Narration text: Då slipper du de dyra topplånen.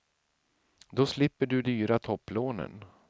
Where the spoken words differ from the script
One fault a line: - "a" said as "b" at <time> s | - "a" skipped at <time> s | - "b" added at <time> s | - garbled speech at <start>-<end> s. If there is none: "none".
- "de" skipped at 1.6 s